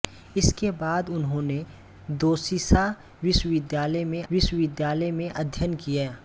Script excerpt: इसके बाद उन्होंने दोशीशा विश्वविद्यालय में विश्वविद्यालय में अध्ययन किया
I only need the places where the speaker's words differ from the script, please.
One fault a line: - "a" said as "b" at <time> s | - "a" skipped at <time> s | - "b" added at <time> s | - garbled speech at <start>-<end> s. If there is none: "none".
none